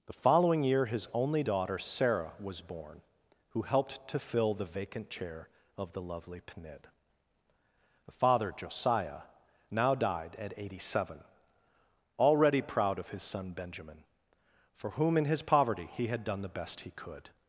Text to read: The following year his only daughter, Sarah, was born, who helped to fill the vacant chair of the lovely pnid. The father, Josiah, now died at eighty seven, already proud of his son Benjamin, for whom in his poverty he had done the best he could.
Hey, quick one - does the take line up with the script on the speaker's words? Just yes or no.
yes